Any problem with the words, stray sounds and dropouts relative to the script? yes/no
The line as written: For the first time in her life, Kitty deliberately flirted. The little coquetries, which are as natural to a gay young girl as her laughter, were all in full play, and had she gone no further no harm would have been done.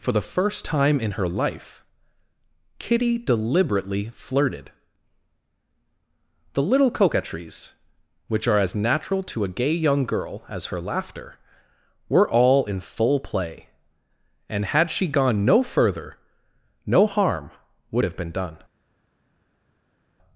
no